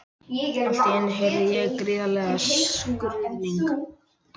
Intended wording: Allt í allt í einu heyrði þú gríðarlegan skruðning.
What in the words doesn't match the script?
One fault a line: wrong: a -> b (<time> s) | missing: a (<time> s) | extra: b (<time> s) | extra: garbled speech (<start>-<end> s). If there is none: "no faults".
missing: allt í (0.9 s)
wrong: þú -> ég (1.6 s)